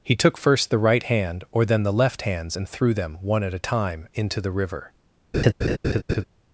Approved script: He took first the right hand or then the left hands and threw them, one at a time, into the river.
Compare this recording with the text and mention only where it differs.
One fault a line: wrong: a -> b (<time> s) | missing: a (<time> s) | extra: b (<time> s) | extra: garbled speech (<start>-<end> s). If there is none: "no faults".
no faults